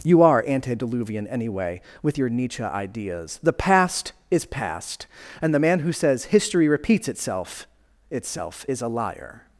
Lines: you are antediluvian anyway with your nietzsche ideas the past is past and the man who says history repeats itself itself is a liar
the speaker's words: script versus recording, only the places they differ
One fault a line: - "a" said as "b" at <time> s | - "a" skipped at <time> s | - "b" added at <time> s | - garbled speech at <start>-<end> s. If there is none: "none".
none